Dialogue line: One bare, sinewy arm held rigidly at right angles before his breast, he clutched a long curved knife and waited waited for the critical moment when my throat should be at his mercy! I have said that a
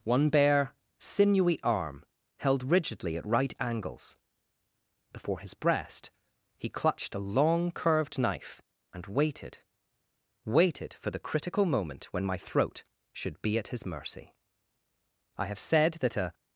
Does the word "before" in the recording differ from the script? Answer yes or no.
no